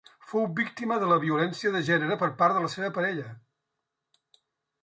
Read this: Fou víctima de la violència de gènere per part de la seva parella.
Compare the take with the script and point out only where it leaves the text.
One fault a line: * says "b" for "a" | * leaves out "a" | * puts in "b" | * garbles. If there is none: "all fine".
all fine